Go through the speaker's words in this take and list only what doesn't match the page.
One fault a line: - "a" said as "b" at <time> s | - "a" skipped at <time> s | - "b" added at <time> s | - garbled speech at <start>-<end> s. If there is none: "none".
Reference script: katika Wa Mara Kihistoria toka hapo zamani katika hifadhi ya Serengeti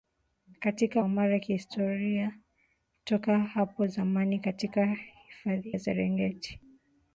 none